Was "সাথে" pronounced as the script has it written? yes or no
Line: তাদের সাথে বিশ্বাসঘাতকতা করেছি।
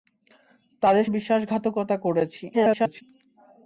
no